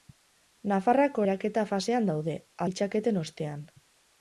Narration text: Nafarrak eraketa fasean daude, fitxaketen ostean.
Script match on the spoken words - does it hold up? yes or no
yes